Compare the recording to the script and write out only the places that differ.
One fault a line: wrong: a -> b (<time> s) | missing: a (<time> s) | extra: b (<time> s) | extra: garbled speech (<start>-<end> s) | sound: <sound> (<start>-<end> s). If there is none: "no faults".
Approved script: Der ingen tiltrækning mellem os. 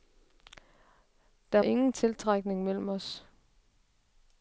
no faults